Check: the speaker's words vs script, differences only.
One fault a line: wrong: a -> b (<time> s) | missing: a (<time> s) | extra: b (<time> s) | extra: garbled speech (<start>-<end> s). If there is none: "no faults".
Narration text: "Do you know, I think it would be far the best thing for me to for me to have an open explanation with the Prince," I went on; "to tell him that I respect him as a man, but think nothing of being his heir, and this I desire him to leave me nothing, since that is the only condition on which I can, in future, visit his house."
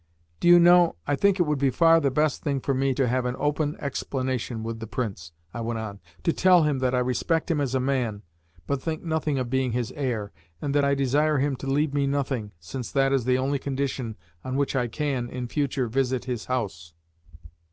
missing: for me to (3.1 s)
wrong: this -> that (10.7 s)